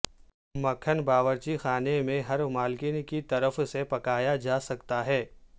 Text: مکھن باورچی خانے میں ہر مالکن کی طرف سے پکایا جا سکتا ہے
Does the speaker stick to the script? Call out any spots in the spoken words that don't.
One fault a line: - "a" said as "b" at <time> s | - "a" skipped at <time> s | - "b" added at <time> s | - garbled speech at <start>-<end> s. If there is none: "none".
none